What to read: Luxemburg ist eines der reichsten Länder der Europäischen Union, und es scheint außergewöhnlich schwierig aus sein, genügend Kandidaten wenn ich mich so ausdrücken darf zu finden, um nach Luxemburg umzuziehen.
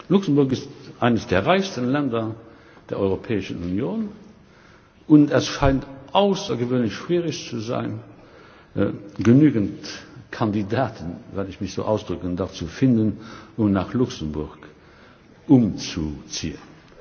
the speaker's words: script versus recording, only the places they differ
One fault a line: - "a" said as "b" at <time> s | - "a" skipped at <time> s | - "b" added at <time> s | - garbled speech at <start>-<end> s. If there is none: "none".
- "aus" said as "zu" at 7.5 s